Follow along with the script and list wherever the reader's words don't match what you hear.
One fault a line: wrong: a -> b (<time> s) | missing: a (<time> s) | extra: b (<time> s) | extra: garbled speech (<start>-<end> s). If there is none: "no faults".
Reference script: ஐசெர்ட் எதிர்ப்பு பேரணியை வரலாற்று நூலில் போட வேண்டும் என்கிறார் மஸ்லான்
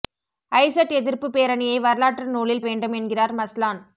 missing: போட (2.6 s)